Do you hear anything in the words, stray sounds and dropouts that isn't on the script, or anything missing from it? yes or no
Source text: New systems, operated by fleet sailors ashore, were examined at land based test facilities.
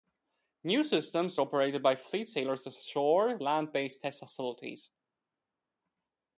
yes